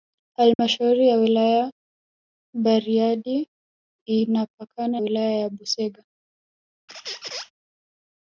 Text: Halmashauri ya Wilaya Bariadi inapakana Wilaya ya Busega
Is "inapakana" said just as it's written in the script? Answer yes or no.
yes